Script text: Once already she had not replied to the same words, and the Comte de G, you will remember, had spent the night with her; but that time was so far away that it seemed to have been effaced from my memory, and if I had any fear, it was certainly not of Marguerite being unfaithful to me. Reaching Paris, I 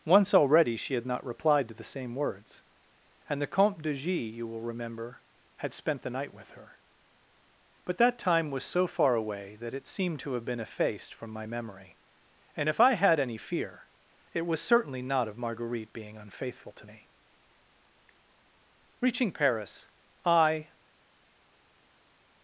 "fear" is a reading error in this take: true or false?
false